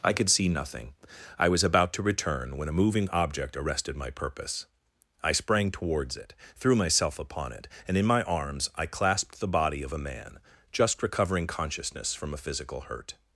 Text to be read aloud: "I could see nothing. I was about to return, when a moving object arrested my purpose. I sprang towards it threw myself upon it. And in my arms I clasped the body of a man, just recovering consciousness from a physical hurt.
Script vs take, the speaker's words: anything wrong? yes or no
no